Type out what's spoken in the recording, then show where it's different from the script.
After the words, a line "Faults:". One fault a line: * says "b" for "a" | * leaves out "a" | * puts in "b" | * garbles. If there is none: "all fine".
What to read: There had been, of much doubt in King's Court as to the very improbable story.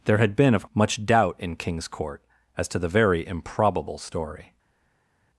There had been, of much doubt in King's Court as to the very improbable story.
Faults:
all fine